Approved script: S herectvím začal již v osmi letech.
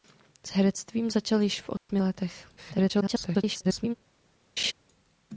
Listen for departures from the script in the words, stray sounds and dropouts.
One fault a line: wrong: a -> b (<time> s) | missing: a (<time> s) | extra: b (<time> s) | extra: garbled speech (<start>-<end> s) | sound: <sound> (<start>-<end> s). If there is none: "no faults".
sound: dropout (1.8-1.9 s)
extra: garbled speech (2.6-3.9 s)
sound: laugh (4.6-4.7 s)